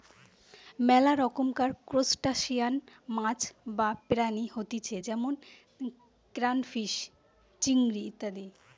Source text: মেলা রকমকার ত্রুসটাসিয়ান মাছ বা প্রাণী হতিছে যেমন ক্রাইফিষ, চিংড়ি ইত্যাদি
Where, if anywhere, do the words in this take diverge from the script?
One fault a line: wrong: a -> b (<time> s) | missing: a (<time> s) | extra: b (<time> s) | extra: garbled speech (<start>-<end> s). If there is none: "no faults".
no faults